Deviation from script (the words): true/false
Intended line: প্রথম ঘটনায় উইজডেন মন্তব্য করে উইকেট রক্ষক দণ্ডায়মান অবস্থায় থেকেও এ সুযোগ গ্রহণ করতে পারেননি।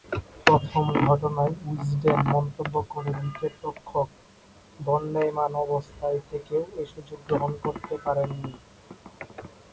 false